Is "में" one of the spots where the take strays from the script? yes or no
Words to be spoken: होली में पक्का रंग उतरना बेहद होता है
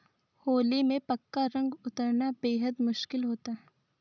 no